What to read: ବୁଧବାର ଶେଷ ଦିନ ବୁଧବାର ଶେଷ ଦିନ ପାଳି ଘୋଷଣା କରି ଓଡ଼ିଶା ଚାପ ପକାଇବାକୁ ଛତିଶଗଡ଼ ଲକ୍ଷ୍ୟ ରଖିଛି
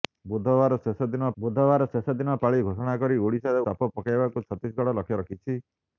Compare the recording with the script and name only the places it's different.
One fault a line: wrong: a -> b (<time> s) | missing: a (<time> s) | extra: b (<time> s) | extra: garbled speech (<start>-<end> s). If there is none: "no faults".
no faults